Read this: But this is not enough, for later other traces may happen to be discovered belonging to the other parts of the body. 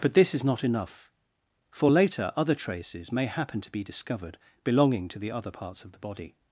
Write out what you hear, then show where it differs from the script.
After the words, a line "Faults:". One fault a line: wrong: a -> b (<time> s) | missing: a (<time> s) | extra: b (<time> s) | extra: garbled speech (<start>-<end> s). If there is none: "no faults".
But this is not enough, for later other traces may happen to be discovered belonging to the other parts of the body.
Faults:
no faults